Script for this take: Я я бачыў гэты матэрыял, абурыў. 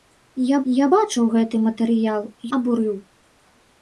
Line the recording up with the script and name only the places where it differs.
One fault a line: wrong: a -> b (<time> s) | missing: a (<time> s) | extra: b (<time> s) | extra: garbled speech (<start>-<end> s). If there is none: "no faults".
no faults